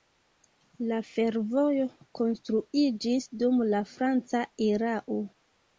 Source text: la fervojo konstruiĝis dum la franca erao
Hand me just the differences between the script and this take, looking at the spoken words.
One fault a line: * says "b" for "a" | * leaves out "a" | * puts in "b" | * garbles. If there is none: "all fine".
all fine